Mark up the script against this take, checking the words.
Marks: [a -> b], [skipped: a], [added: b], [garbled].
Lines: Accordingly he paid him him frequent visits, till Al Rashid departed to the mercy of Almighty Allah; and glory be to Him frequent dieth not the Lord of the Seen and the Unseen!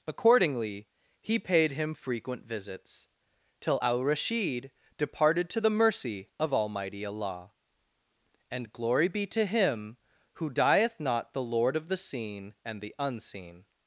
Accordingly he paid him [skipped: him] frequent visits, till Al Rashid departed to the mercy of Almighty Allah; and glory be to Him [frequent -> who] dieth not the Lord of the Seen and the Unseen!